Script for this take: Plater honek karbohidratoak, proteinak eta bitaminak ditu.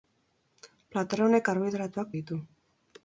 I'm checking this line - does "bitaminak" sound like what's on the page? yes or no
no